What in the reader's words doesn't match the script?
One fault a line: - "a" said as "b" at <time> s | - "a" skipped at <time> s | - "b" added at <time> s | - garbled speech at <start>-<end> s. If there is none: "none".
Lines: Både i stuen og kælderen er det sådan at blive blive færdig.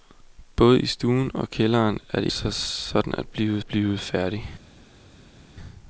none